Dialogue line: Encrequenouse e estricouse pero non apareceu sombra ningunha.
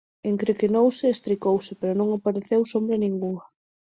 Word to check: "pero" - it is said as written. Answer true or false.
true